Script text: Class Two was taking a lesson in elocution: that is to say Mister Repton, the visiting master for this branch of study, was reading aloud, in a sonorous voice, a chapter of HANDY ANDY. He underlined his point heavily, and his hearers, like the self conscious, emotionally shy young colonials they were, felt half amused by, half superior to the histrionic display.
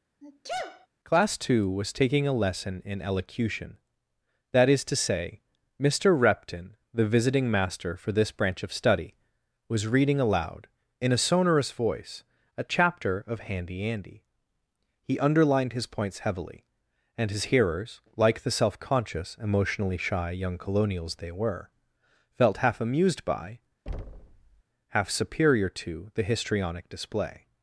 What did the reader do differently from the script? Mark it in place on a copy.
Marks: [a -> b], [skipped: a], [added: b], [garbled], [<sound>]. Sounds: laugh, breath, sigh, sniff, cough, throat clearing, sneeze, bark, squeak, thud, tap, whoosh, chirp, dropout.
[sneeze] Class Two was taking a lesson in elocution: that is to say Mister Repton, the visiting master for this branch of study, was reading aloud, in a sonorous voice, a chapter of HANDY ANDY. He underlined his [point -> points] heavily, and his hearers, like the self conscious, emotionally shy young colonials they were, felt half amused by, [thud] half superior to the histrionic display.